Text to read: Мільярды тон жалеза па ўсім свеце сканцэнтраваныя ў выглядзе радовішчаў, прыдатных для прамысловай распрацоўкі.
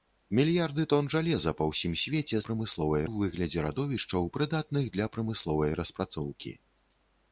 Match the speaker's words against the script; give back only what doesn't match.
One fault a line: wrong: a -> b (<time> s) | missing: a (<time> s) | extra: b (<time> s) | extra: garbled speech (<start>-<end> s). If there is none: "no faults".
wrong: сканцэнтраваныя -> прамысловай (2.5 s)